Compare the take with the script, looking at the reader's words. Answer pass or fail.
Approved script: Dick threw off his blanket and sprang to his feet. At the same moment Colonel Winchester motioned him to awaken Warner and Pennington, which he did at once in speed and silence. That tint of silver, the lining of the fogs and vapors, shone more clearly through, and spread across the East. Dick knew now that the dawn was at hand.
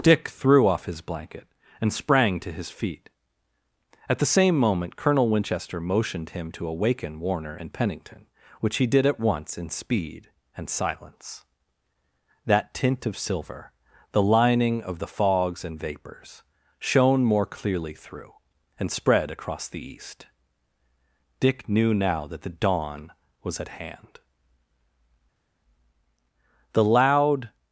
fail